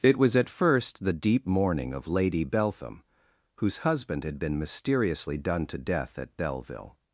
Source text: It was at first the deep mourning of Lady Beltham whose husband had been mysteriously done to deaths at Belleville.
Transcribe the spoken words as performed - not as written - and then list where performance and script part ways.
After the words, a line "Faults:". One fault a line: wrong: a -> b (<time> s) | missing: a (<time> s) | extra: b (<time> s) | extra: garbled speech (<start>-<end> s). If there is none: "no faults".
It was at first the deep mourning of Lady Beltham whose husband had been mysteriously done to death at Belleville.
Faults:
wrong: deaths -> death (5.8 s)